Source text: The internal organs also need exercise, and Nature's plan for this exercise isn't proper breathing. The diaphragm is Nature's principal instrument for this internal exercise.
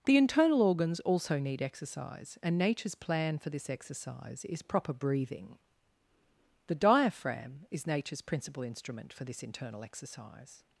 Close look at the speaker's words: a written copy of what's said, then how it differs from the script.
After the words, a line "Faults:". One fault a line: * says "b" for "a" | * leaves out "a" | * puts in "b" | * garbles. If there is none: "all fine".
The internal organs also need exercise, and Nature's plan for this exercise is proper breathing. The diaphragm is Nature's principal instrument for this internal exercise.
Faults:
* says "is" for "isn't"